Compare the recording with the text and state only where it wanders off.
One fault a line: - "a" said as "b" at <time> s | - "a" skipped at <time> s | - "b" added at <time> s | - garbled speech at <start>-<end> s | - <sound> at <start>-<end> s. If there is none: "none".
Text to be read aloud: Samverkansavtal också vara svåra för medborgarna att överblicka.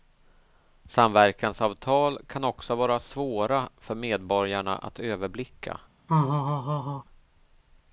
- "kan" added at 2.3 s
- laugh at 6.1-7.0 s